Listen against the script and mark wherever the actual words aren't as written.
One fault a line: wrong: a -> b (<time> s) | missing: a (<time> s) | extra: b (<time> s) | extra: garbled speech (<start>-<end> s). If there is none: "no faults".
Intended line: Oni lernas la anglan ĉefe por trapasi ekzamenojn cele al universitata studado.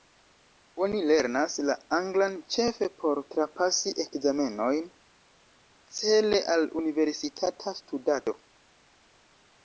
no faults